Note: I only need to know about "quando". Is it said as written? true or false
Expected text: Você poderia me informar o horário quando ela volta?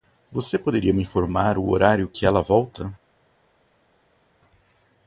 false